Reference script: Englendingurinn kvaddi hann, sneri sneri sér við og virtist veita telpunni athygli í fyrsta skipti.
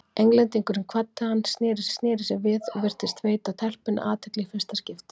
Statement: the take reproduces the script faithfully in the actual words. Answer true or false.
true